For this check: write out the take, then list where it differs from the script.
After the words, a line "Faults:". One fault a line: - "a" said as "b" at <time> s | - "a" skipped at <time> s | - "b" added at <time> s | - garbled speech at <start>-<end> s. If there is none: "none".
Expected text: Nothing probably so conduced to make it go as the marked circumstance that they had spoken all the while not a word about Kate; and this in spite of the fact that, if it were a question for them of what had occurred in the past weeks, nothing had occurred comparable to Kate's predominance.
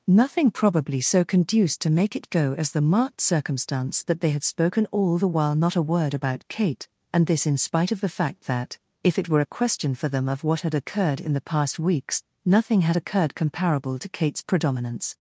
Nothing probably so conduced to make it go as the marked circumstance that they had spoken all the while not a word about Kate; and this in spite of the fact that, if it were a question for them of what had occurred in the past weeks, nothing had occurred comparable to Kate's predominance.
Faults:
none